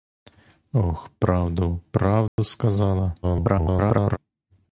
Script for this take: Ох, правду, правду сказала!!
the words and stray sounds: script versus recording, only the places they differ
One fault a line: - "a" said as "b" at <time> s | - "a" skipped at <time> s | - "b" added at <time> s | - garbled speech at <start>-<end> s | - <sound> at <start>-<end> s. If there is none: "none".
- dropout at 2.3-2.4 s
- garbled speech at 3.2-4.2 s